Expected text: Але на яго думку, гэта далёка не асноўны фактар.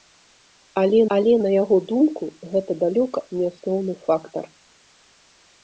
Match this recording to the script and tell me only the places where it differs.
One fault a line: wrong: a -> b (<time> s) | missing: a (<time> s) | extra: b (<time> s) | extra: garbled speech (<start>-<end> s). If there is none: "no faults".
extra: але (1.1 s)